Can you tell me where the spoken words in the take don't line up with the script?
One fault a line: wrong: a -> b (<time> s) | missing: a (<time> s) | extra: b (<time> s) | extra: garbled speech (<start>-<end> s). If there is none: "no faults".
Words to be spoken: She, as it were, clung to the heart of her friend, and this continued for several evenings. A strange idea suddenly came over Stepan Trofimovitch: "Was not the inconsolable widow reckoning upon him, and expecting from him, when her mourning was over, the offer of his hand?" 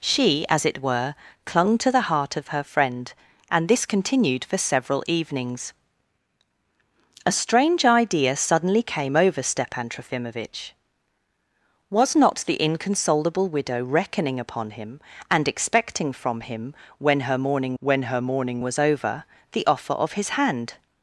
extra: when her mourning (17.8 s)